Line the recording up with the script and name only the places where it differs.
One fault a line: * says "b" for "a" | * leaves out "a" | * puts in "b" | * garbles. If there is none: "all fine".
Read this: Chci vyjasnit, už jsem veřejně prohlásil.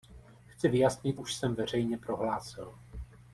all fine